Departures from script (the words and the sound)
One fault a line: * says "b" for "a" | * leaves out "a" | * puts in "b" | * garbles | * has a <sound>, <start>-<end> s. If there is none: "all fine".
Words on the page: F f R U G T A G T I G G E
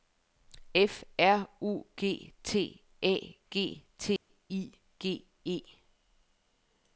* leaves out "f"
* has a dropout, 4.2-4.3 s
* leaves out "G"